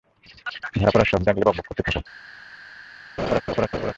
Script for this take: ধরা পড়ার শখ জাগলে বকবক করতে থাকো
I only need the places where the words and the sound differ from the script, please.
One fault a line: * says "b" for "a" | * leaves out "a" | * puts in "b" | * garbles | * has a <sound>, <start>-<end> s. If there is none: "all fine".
* has a laugh, 3.2-3.9 s